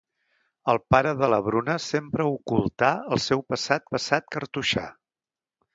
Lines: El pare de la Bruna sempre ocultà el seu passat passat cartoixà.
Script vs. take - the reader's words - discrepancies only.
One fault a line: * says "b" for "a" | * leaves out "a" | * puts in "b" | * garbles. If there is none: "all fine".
all fine